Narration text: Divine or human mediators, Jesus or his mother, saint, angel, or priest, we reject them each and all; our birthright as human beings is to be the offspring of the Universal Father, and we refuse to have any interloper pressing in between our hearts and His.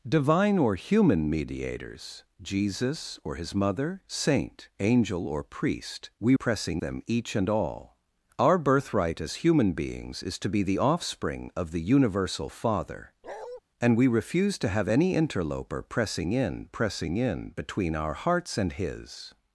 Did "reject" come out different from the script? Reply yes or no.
yes